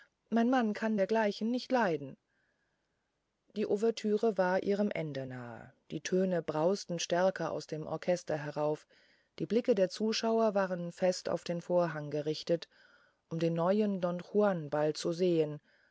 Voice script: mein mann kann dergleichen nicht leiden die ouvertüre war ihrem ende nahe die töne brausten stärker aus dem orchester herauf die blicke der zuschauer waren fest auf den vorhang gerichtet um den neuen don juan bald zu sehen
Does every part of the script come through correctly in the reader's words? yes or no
yes